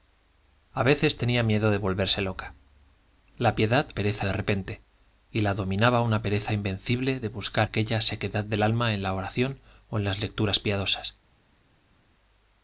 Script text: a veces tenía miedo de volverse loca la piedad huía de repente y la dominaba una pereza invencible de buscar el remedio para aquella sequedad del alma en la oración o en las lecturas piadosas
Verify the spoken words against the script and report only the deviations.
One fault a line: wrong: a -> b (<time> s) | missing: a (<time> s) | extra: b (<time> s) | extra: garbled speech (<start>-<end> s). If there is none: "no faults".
wrong: huía -> pereza (3.9 s)
missing: el remedio para (7.7 s)